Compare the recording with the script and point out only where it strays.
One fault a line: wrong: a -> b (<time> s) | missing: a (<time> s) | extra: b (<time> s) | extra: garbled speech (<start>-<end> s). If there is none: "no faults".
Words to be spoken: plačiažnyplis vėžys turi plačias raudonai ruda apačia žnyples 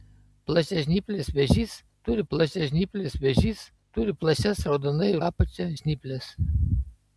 extra: plačiažnyplis vėžys turi (2.3 s)
missing: ruda (5.1 s)